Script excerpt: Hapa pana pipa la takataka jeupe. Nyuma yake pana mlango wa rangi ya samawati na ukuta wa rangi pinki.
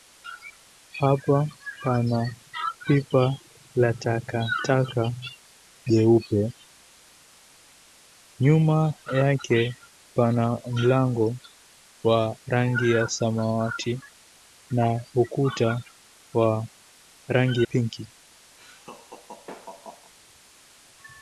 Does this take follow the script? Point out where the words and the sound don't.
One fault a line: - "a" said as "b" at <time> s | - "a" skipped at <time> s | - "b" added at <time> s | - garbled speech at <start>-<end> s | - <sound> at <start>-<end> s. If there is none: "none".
- laugh at 18.6-20.1 s